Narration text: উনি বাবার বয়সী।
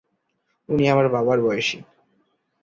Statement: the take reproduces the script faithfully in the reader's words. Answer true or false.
false